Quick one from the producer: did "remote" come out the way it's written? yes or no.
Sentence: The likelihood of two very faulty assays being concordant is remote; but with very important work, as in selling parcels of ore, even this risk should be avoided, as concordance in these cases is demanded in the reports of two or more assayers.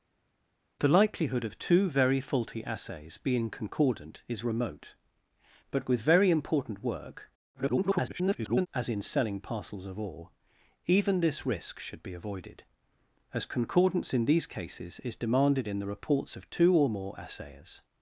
yes